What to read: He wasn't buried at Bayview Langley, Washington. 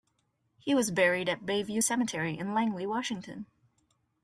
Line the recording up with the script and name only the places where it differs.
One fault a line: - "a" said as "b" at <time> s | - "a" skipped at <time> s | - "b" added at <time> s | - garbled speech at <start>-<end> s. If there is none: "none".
- "wasn't" said as "was" at 0.7 s
- "Cemetery in" added at 1.8 s